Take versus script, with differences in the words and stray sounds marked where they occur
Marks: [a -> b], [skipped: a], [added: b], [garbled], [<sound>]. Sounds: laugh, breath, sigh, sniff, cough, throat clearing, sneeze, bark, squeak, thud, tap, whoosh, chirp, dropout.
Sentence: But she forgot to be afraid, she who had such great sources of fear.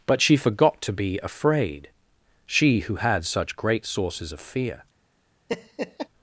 But she forgot to be afraid, she who had such great sources of fear. [laugh]